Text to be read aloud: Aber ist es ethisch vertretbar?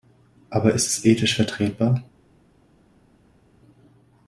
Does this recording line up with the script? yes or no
yes